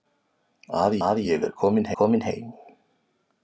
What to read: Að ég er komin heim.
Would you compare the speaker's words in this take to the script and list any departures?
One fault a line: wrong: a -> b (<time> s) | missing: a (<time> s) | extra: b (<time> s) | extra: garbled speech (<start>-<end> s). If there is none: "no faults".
extra: að (1.1 s)
extra: komin (2.0 s)